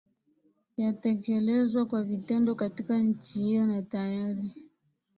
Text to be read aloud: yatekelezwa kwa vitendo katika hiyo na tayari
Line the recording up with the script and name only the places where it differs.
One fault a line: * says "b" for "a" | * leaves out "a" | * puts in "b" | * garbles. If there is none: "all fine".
* puts in "nchi"